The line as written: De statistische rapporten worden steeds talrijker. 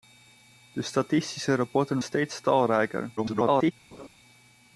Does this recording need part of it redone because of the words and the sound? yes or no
yes